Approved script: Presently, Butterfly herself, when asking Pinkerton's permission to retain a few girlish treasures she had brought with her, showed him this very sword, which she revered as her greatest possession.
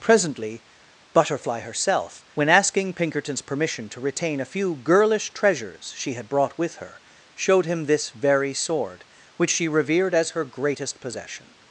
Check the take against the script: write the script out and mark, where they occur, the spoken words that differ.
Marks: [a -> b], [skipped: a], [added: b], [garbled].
Presently, Butterfly herself, when asking Pinkerton's permission to retain a few girlish treasures she had brought with her, showed him this very sword, which she revered as her greatest possession.